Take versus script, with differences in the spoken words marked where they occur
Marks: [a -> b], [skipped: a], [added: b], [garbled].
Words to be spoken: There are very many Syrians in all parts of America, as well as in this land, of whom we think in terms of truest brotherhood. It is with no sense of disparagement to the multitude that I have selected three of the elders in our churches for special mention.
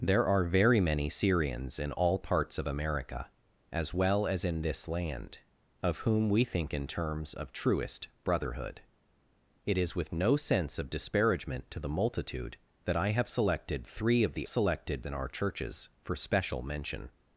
There are very many Syrians in all parts of America, as well as in this land, of whom we think in terms of truest brotherhood. It is with no sense of disparagement to the multitude that I have selected three of the [elders -> selected] in our churches for special mention.